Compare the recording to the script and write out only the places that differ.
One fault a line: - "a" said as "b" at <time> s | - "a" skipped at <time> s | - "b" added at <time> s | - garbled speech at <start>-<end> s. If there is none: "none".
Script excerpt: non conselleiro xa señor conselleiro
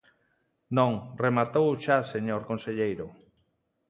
- "conselleiro" said as "rematou" at 1.2 s